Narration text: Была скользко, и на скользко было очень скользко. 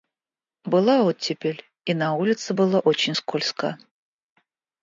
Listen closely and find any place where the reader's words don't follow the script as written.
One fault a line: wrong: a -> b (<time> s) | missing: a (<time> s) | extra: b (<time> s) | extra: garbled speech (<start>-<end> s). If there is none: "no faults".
wrong: скользко -> оттепель (1.0 s)
wrong: скользко -> улице (2.1 s)